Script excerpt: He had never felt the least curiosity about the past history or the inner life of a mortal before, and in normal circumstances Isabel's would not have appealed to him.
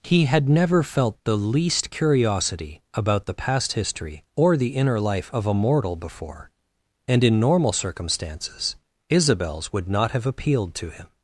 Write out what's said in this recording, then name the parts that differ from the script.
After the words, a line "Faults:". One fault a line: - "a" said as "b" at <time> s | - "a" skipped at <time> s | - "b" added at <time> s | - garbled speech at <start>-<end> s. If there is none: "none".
He had never felt the least curiosity about the past history or the inner life of a mortal before, and in normal circumstances Isabel's would not have appealed to him.
Faults:
none